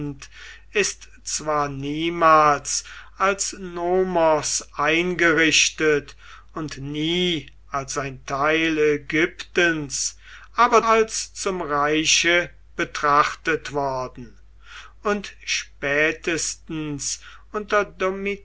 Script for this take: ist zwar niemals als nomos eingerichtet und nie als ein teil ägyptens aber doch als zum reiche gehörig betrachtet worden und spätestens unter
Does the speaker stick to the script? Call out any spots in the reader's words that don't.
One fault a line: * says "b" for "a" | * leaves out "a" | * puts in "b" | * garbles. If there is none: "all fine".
* leaves out "doch"
* leaves out "gehörig"